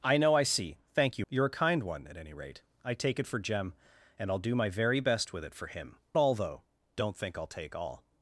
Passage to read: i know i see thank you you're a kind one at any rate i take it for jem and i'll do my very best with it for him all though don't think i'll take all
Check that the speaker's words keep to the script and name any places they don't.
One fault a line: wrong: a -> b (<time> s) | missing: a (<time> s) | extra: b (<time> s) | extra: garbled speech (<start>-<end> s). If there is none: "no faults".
no faults